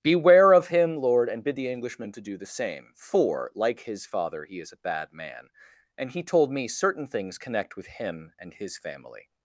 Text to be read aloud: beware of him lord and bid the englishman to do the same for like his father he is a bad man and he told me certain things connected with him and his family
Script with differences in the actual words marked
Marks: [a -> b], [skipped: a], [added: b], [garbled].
beware of him lord and bid the englishman to do the same for like his father he is a bad man and he told me certain things [connected -> connect] with him and his family